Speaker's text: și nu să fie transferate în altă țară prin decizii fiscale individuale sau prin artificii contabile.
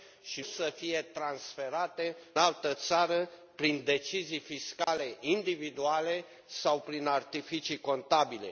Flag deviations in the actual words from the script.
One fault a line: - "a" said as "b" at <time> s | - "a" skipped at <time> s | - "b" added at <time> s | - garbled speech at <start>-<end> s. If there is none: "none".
- "nu" skipped at 0.4 s
- "în" skipped at 2.2 s